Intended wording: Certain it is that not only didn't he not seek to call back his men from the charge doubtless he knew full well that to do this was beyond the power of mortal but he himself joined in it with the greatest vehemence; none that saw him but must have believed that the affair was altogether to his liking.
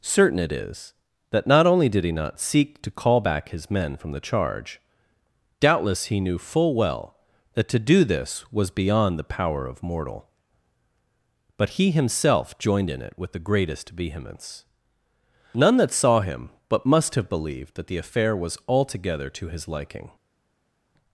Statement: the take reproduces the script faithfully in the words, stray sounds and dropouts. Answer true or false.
false